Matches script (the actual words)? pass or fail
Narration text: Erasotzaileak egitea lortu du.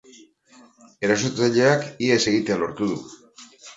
fail